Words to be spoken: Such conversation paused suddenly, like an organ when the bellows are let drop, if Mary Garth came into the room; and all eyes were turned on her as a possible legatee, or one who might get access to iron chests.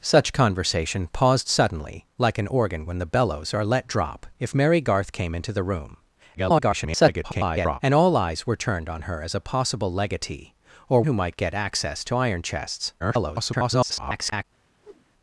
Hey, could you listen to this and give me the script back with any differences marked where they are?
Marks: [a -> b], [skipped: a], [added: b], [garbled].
Such conversation paused suddenly, like an organ when the bellows are let drop, if Mary Garth came into the room; [garbled] and all eyes were turned on her as a possible legatee, or [skipped: one] who might get access to iron chests. [garbled]